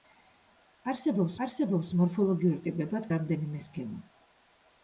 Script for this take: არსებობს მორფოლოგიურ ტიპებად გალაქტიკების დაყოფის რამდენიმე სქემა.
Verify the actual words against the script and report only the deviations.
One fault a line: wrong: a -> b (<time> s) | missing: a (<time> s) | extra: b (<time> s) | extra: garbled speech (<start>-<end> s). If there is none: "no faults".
extra: არსებობს (1.5 s)
missing: გალაქტიკების დაყოფის (3.1 s)